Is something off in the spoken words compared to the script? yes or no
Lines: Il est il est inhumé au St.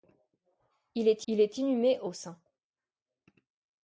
no